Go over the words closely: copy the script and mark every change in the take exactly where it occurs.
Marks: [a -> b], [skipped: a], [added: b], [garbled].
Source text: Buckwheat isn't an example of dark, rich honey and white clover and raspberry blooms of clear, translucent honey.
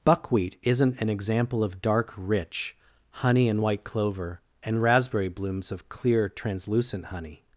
Buckwheat isn't an example of dark, rich honey and white clover and raspberry blooms of clear, translucent honey.